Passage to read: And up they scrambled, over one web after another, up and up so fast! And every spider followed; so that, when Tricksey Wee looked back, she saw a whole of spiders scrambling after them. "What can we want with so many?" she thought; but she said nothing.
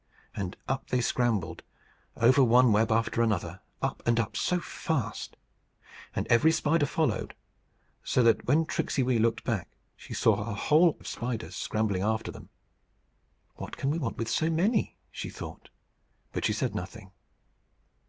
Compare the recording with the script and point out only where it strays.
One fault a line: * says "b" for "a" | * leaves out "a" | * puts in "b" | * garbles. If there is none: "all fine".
all fine